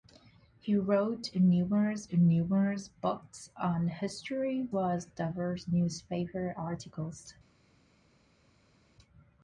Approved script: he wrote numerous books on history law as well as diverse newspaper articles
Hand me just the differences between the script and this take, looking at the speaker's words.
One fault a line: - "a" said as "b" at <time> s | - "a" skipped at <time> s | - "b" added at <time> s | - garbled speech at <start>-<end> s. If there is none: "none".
- "numerous" added at 2.1 s
- "law as" skipped at 4.7 s